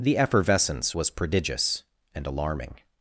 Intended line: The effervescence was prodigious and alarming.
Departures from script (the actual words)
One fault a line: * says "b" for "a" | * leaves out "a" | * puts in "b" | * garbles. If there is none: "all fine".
all fine